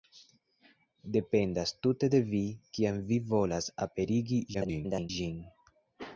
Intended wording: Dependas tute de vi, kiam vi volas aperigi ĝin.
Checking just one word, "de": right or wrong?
right